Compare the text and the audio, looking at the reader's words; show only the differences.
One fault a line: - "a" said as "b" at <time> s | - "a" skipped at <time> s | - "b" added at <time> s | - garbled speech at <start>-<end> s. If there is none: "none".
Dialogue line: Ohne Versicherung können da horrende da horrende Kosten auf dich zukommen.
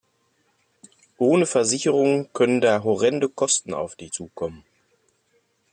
- "da horrende" skipped at 3.3 s